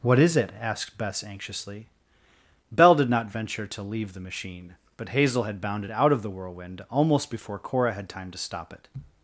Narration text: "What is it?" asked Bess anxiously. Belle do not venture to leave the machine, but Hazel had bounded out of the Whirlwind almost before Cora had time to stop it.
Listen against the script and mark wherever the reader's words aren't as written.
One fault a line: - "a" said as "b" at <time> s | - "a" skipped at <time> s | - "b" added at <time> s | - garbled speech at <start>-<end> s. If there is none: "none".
- "do" said as "did" at 3.0 s